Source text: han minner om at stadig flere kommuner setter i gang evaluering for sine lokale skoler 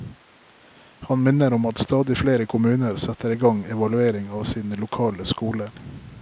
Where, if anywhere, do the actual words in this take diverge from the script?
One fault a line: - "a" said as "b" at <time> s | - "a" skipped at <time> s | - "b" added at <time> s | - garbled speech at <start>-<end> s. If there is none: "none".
- "for" said as "av" at 4.3 s